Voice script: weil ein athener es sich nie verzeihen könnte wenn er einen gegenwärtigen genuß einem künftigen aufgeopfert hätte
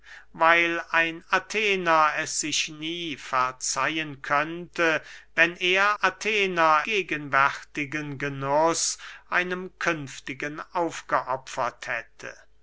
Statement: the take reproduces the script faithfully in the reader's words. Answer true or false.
false